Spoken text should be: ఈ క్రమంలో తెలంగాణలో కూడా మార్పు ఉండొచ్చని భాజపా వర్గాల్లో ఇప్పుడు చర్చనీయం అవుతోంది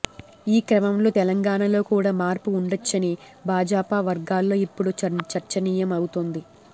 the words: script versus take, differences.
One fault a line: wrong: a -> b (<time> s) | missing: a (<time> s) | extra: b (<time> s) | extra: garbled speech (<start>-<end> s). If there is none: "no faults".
no faults